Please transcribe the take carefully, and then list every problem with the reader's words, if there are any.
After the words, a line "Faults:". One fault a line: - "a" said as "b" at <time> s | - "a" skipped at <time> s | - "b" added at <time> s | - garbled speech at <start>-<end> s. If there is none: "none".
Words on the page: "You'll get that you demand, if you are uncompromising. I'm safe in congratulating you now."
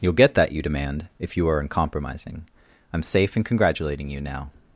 "You'll get that you demand, if you are uncompromising. I'm safe in congratulating you now."
Faults:
none